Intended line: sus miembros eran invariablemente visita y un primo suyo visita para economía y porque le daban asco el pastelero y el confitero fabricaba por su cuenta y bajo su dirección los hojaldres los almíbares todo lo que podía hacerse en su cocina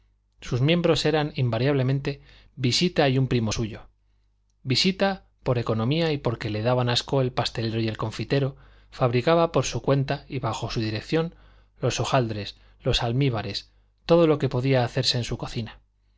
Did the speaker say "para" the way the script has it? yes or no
no